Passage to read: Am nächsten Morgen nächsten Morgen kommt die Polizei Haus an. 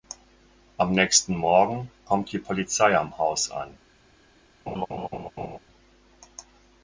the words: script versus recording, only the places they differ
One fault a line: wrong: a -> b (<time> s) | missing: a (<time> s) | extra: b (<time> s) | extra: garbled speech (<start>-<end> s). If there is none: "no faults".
missing: nächsten Morgen (1.9 s)
extra: am (3.0 s)